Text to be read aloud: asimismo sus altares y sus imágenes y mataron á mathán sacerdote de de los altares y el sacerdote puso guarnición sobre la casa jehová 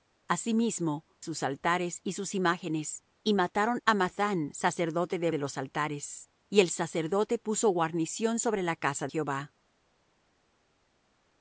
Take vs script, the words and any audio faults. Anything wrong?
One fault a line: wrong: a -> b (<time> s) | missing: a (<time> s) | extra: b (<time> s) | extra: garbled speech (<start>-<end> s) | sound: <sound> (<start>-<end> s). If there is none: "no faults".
no faults